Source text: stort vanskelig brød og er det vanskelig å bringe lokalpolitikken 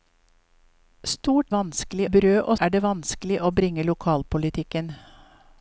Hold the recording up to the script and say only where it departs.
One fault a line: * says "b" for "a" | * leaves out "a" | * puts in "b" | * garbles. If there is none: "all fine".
all fine